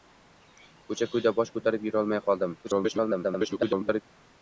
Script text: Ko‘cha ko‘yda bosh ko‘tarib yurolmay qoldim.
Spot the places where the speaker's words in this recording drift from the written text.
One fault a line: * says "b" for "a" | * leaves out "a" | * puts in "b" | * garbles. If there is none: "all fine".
* garbles